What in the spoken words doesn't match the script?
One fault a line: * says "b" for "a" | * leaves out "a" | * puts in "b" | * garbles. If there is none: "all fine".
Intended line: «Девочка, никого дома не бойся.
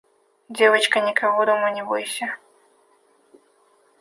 all fine